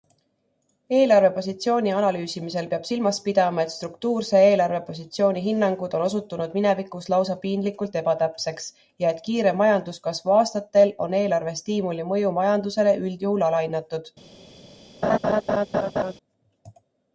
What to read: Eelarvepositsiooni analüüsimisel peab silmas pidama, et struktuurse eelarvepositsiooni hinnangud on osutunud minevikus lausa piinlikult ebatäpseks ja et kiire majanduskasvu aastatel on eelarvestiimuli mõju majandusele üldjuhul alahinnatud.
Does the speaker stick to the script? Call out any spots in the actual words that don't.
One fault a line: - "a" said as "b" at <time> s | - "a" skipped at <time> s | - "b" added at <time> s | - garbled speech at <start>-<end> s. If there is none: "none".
none